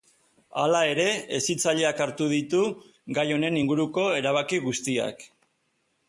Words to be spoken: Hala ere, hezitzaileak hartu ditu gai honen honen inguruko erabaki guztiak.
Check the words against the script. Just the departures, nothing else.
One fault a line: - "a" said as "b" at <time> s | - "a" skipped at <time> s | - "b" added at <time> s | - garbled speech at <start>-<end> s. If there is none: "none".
- "honen" skipped at 3.6 s